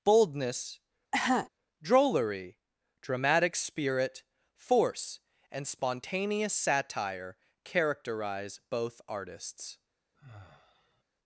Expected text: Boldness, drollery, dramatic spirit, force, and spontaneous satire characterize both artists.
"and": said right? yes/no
yes